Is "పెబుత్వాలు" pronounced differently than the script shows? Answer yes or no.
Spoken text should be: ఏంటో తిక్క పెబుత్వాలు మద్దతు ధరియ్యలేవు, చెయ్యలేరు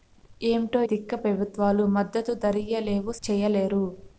no